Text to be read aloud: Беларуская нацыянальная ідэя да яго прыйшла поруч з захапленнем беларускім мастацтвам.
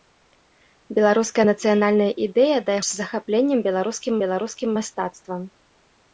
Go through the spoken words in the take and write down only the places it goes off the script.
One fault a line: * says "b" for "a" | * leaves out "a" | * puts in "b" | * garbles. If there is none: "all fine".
* leaves out "яго прыйшла поруч"
* puts in "беларускім"